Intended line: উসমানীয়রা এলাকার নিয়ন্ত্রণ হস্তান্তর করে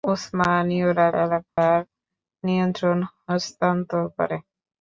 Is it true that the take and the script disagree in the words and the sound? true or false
true